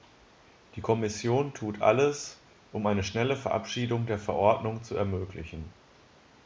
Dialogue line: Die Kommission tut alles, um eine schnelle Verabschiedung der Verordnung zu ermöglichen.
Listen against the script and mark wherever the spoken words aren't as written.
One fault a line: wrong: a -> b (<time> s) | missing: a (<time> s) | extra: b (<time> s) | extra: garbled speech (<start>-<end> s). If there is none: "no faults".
no faults